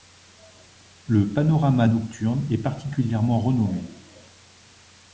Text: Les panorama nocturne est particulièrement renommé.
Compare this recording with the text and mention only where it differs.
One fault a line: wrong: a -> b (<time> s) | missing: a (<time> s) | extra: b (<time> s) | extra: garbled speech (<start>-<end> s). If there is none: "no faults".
wrong: Les -> Le (1.1 s)